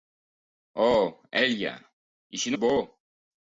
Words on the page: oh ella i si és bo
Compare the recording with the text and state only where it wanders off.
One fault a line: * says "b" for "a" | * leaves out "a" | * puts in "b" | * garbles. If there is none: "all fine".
all fine